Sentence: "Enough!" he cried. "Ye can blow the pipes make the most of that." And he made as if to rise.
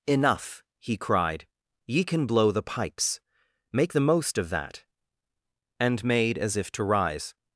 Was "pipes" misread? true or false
false